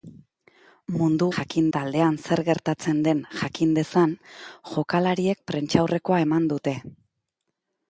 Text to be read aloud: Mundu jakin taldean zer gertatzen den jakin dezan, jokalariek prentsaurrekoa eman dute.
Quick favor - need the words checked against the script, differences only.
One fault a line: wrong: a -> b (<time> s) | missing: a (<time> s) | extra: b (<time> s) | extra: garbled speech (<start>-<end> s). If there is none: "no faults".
no faults